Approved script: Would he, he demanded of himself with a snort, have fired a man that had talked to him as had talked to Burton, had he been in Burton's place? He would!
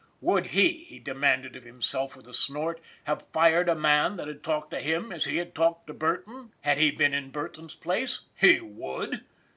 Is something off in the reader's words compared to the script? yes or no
yes